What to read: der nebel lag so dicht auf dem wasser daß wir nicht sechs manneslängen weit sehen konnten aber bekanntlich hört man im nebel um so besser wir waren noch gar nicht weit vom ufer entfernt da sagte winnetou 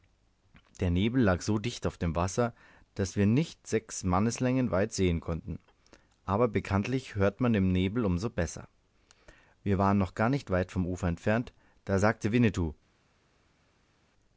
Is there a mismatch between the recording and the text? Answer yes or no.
no